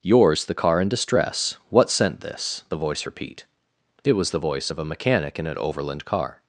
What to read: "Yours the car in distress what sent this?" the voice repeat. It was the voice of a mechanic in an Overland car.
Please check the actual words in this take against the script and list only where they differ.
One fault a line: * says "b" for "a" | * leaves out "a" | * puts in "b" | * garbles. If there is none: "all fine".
all fine